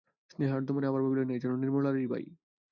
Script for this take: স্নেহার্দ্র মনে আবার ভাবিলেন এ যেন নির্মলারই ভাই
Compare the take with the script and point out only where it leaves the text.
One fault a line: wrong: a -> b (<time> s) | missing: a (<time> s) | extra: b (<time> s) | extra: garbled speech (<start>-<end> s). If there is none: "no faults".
no faults